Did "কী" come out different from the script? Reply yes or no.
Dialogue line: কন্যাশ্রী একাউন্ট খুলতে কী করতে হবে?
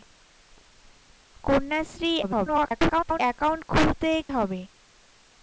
yes